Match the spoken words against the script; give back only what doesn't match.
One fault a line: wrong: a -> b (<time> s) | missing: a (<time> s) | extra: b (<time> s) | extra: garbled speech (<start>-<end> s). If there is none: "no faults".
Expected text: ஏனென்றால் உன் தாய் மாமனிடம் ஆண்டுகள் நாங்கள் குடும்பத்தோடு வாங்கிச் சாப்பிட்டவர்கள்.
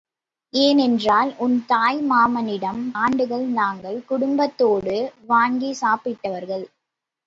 no faults